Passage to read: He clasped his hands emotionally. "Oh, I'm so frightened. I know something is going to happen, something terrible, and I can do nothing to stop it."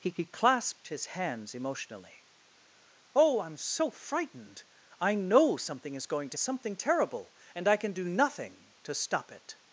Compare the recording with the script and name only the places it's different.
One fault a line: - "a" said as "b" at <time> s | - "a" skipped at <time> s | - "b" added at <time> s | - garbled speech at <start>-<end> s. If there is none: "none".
- "he" added at 0.1 s
- "happen" skipped at 6.4 s